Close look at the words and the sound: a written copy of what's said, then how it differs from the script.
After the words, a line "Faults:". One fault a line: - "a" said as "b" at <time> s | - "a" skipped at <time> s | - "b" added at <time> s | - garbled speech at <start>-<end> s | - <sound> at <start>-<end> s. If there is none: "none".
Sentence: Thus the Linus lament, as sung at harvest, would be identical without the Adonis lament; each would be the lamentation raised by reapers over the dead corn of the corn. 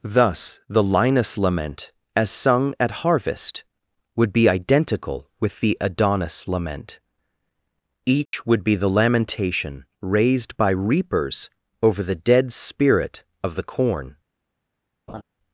Thus the Linus lament, as sung at harvest, would be identical with the Adonis lament; each would be the lamentation raised by reapers over the dead spirit of the corn.
Faults:
- "without" said as "with" at 5.4 s
- dropout at 8.3-8.3 s
- "corn" said as "spirit" at 12.5 s
- laugh at 15.1-15.2 s